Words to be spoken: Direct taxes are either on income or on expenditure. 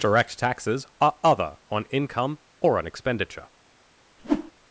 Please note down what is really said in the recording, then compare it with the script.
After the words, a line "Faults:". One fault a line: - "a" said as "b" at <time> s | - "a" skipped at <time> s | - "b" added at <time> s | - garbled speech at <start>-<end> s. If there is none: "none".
Direct taxes are other on income or on expenditure.
Faults:
- "either" said as "other" at 1.2 s